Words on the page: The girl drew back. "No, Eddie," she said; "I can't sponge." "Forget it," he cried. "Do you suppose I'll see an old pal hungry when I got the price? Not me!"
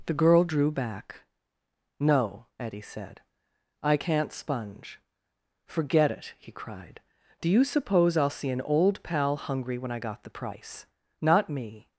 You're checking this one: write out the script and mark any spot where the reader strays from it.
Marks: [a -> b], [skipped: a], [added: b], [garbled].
The girl drew back. "No, Eddie," [skipped: she] said; "I can't sponge." "Forget it," he cried. "Do you suppose I'll see an old pal hungry when I got the price? Not me!"